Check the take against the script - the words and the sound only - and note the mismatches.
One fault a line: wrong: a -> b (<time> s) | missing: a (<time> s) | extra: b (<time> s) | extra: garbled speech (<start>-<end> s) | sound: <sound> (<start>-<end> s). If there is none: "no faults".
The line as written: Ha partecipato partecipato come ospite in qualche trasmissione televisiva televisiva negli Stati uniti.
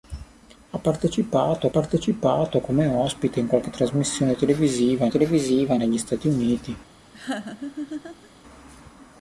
sound: laugh (7.1-8.3 s)